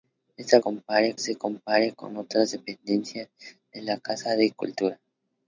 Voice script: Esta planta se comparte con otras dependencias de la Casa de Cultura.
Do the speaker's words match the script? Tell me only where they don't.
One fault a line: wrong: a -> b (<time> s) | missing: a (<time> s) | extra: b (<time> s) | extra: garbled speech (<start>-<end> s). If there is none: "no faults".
wrong: planta -> comparte (0.6 s)